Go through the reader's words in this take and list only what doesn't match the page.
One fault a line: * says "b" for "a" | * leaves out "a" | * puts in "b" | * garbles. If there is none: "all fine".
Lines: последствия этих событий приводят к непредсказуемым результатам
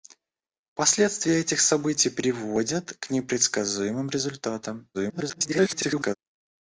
* garbles